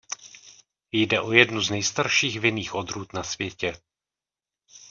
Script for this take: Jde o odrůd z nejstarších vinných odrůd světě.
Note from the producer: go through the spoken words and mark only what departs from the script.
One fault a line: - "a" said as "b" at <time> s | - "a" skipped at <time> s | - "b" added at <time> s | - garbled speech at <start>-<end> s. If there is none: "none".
- "odrůd" said as "jednu" at 1.3 s
- "na" added at 3.1 s